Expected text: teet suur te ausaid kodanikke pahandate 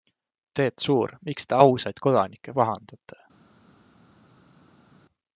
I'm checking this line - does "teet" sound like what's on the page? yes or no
yes